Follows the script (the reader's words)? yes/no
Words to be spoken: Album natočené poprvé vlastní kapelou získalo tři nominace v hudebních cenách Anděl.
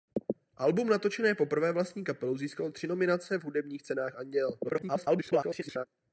no